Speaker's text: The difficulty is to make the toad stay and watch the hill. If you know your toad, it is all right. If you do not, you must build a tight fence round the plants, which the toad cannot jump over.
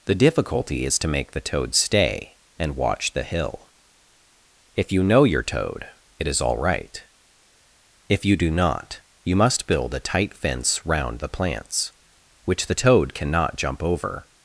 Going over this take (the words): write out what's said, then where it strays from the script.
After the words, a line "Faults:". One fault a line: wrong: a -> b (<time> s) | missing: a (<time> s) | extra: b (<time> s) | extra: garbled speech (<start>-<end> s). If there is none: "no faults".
The difficulty is to make the toad stay and watch the hill. If you know your toad, it is all right. If you do not, you must build a tight fence round the plants, which the toad cannot jump over.
Faults:
no faults